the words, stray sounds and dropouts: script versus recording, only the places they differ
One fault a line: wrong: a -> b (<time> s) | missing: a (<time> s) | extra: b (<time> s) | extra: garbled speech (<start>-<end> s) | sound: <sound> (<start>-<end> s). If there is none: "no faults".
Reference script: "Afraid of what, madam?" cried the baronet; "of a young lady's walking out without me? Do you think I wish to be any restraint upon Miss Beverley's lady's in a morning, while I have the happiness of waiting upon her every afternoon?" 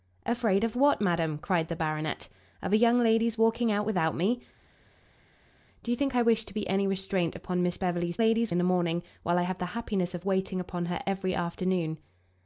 no faults